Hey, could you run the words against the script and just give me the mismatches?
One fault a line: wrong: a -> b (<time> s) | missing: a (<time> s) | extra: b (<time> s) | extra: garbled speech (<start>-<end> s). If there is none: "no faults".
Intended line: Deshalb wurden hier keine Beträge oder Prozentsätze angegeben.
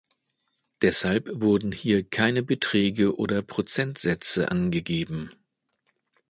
no faults